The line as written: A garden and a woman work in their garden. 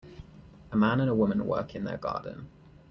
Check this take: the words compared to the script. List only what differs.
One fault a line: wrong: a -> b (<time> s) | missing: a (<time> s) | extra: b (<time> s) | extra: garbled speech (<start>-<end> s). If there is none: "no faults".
wrong: garden -> man (0.7 s)